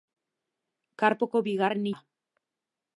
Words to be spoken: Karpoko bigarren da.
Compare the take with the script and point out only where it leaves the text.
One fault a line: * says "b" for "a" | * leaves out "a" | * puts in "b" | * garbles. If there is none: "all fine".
all fine